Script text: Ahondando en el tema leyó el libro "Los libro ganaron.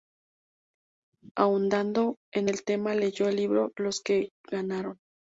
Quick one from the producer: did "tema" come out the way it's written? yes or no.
yes